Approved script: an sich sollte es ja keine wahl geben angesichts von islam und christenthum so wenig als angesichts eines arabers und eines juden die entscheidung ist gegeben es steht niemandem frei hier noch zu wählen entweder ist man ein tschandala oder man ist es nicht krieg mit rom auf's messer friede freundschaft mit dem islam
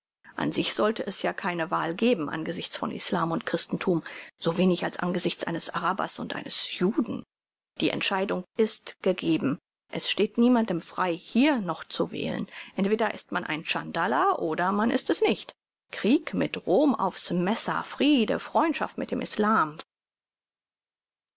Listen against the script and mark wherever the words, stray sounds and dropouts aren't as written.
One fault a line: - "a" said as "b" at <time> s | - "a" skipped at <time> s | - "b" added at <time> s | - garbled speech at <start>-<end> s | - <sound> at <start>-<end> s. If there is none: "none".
none